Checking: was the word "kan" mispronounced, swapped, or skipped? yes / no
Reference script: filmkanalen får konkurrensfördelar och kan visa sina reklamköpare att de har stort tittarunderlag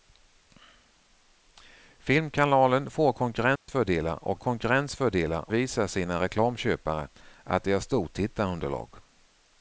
yes